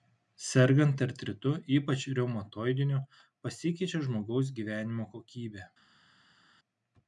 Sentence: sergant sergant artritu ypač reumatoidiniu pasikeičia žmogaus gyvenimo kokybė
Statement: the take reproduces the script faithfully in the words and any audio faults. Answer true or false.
false